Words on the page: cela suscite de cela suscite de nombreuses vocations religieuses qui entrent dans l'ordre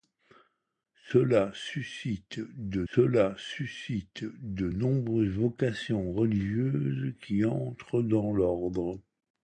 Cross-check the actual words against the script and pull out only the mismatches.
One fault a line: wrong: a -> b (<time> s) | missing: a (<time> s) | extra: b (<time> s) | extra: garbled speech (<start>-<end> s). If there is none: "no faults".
no faults